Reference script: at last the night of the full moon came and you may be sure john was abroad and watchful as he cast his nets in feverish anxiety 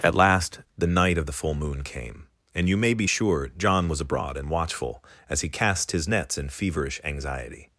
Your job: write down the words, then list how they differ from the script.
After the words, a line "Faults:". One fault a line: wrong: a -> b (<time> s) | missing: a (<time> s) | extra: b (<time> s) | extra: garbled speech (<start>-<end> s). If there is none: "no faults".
at last the night of the full moon came and you may be sure john was abroad and watchful as he cast his nets in feverish anxiety
Faults:
no faults